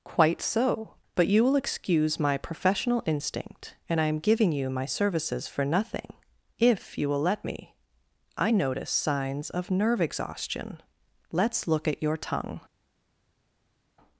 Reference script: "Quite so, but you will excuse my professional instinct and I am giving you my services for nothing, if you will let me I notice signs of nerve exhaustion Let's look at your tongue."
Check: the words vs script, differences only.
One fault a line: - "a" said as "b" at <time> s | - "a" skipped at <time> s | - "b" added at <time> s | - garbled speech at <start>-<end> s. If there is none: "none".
none